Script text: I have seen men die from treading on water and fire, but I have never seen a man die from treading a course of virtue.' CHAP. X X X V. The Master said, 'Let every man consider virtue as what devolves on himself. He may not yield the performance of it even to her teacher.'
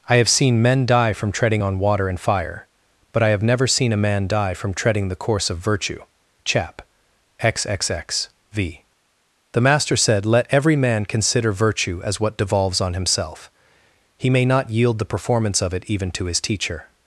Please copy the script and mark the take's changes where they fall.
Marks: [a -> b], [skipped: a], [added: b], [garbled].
I have seen men die from treading on water and fire, but I have never seen a man die from treading [a -> the] course of virtue.' CHAP. X X X V. The Master said, 'Let every man consider virtue as what devolves on himself. He may not yield the performance of it even to [her -> his] teacher.'